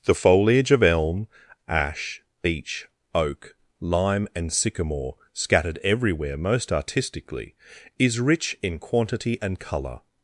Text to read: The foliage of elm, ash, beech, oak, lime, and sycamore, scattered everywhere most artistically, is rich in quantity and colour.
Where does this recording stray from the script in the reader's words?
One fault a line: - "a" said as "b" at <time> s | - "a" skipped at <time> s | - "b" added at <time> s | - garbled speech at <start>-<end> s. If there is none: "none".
none